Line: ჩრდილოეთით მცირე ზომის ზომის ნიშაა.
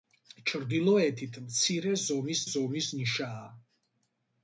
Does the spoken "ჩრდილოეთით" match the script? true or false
true